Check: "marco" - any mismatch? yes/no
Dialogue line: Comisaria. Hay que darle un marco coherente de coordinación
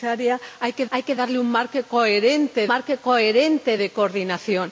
no